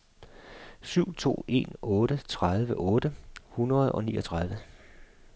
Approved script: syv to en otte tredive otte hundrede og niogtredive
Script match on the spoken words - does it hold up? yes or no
yes